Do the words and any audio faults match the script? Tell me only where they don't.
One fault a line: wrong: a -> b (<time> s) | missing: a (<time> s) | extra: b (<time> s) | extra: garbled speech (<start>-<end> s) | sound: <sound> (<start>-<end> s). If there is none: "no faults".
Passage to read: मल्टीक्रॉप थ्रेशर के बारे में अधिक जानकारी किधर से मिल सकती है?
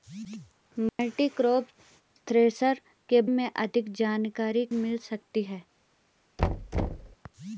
sound: dropout (0.9-1.0 s)
missing: बारे (3.2 s)
missing: किधर से (4.6 s)
sound: thud (6.4-7.2 s)